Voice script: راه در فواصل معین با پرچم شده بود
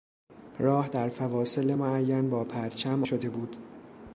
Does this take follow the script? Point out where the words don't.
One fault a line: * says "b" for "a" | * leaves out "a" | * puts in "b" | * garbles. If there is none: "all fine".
all fine